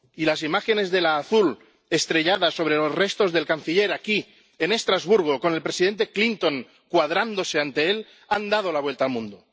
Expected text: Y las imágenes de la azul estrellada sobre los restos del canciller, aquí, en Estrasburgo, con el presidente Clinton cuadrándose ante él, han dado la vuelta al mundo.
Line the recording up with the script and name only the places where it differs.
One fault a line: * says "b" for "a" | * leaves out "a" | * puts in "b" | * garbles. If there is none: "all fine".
all fine